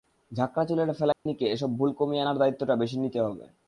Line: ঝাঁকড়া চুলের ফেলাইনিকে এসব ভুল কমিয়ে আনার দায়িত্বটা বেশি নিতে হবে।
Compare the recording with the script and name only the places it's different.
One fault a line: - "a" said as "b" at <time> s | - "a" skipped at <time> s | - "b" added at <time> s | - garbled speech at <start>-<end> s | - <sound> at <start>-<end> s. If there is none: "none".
- dropout at 1.1-1.3 s